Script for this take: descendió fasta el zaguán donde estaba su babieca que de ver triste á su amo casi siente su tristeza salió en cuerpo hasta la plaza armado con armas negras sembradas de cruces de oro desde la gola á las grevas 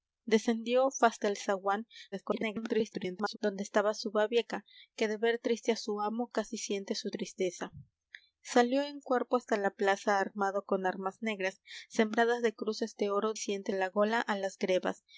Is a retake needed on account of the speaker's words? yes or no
yes